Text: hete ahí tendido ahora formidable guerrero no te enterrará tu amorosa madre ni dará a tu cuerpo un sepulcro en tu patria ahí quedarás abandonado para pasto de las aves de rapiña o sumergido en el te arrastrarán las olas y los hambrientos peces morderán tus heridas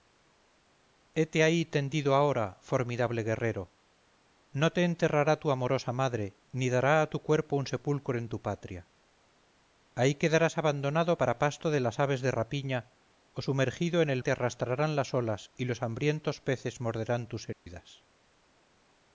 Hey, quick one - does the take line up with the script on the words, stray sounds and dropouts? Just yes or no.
no